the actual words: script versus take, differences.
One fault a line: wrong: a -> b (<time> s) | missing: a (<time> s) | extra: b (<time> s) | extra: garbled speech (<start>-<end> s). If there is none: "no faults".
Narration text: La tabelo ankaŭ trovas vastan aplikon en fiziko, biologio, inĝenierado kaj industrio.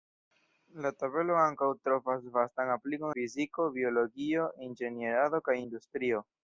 missing: en (3.1 s)